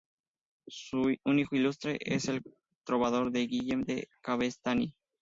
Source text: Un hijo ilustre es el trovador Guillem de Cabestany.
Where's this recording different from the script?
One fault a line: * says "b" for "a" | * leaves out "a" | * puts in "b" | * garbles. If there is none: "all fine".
all fine